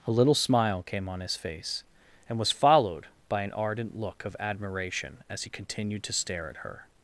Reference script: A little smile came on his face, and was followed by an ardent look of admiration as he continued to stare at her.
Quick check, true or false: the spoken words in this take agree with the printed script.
true